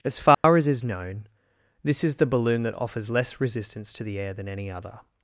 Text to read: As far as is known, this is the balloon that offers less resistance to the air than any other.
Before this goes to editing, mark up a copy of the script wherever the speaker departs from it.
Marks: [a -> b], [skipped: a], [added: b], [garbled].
As far as is known, this is the balloon that offers less resistance to the air than any other.